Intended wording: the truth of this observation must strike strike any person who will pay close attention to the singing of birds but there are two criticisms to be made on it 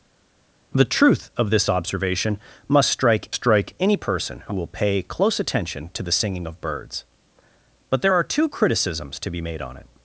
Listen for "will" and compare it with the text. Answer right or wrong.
right